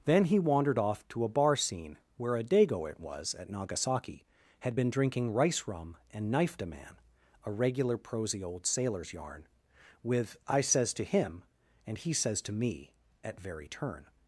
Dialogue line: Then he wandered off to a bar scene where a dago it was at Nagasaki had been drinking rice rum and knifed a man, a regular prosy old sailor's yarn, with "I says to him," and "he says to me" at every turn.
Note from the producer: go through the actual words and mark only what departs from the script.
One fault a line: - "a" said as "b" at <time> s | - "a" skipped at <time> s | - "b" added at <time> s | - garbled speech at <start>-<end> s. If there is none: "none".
- "every" said as "very" at 13.4 s